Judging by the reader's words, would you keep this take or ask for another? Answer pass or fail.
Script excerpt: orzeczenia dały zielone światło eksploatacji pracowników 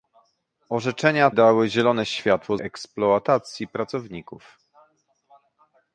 pass